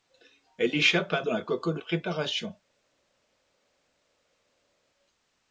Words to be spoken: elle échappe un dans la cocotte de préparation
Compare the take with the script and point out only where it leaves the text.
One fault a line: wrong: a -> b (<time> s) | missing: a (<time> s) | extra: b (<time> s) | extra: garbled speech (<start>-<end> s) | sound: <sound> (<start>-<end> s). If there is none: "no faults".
no faults